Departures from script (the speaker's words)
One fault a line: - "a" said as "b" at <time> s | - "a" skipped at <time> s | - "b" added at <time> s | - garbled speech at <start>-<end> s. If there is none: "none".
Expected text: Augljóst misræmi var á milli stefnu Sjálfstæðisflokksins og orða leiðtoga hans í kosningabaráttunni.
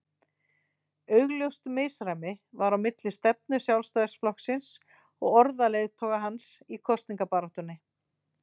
none